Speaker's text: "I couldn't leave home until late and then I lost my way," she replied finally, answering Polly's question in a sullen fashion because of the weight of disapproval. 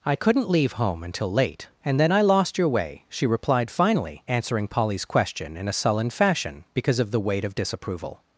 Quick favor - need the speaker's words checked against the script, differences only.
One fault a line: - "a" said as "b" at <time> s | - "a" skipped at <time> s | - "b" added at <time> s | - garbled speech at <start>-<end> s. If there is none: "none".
- "my" said as "your" at 2.6 s